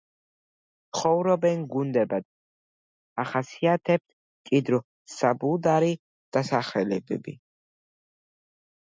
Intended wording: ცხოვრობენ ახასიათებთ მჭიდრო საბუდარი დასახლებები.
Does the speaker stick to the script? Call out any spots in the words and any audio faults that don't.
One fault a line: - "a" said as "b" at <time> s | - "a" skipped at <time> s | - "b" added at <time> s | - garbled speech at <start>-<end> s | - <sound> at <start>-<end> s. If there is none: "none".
- "გუნდებად" added at 1.7 s